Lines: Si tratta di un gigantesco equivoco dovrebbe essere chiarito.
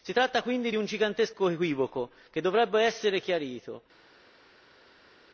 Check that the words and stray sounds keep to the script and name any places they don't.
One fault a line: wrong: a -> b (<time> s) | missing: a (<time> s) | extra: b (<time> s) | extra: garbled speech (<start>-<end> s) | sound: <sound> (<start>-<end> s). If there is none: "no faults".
extra: quindi (0.4 s)
extra: che (2.3 s)